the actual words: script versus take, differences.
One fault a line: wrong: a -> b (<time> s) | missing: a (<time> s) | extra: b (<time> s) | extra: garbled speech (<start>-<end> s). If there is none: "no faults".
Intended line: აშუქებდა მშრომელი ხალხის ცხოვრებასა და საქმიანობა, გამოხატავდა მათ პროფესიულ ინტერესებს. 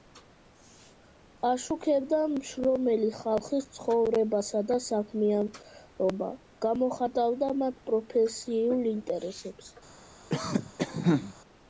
no faults